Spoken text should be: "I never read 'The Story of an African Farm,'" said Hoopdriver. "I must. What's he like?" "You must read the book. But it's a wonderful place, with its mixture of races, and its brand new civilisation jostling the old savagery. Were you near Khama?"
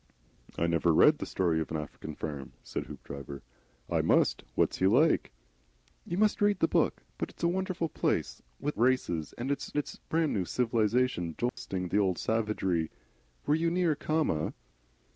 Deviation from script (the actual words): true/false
true